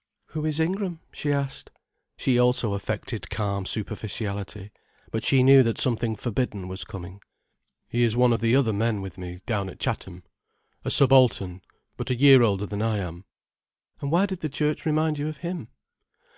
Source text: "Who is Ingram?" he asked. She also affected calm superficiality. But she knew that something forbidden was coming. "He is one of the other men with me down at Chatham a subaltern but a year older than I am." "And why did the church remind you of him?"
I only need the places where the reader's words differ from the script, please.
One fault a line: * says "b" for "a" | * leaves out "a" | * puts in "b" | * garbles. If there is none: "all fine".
* says "she" for "he"